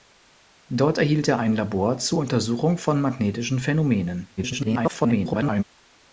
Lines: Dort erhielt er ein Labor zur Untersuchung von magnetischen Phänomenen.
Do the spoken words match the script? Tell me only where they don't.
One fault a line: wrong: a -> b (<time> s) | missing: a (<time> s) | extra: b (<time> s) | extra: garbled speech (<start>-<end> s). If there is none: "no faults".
extra: garbled speech (4.4-5.6 s)